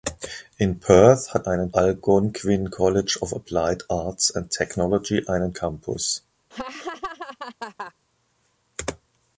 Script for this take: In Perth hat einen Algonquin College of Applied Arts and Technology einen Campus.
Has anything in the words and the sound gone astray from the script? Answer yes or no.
yes